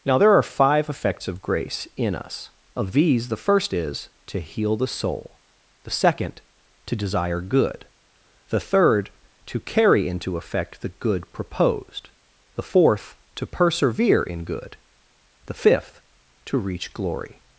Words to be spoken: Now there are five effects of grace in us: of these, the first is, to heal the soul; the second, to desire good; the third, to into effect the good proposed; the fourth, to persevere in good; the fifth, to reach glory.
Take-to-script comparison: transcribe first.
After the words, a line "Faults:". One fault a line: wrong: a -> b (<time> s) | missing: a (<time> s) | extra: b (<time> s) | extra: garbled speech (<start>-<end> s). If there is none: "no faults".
Now there are five effects of grace in us: of these, the first is, to heal the soul; the second, to desire good; the third, to carry into effect the good proposed; the fourth, to persevere in good; the fifth, to reach glory.
Faults:
extra: carry (9.6 s)